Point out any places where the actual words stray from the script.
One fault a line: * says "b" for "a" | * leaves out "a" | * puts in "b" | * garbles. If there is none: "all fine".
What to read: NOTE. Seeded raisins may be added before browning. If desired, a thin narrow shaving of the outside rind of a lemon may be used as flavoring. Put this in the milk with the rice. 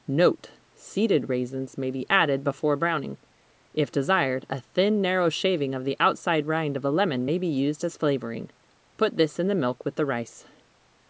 all fine